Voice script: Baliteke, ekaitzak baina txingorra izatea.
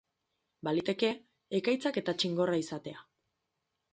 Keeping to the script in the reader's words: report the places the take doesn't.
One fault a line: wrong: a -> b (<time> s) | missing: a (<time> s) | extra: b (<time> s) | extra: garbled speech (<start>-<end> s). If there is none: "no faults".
wrong: baina -> eta (2.0 s)